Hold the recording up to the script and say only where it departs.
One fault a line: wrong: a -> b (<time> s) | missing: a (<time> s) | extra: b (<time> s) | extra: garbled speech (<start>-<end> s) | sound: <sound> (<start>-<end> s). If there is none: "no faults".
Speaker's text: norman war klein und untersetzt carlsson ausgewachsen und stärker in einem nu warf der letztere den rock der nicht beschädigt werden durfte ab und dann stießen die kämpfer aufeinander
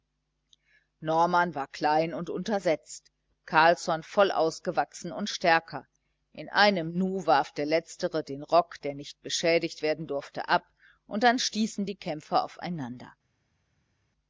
extra: voll (4.0 s)